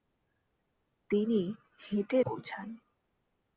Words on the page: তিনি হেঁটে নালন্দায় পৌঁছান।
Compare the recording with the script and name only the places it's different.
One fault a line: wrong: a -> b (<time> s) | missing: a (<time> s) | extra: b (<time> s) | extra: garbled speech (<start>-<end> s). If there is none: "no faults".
missing: নালন্দায় (2.2 s)